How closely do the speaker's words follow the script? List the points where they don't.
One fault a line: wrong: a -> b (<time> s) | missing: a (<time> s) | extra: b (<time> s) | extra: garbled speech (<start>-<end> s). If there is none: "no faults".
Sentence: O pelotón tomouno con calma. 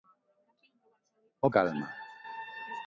missing: pelotón tomouno con (1.5 s)